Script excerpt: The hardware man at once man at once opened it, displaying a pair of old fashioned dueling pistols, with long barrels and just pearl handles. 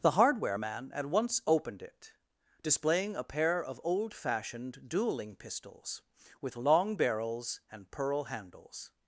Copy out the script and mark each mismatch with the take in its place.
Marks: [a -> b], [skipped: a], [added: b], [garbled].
The hardware man at once [skipped: man at once] opened it, displaying a pair of old fashioned dueling pistols, with long barrels and [skipped: just] pearl handles.